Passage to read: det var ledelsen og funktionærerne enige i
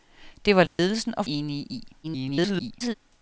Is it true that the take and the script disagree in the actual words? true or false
true